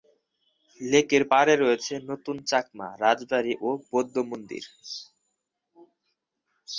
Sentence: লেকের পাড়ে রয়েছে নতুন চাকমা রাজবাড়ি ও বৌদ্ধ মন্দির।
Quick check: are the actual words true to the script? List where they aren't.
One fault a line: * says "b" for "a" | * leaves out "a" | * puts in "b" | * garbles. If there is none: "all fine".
all fine